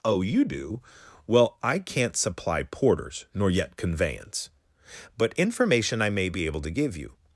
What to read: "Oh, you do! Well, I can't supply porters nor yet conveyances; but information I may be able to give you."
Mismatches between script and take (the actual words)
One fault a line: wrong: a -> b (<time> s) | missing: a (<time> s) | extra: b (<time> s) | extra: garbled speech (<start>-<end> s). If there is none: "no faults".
wrong: conveyances -> conveyance (3.8 s)